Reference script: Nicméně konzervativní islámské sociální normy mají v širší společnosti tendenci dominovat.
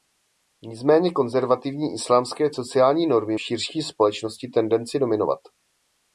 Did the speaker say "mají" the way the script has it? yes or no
no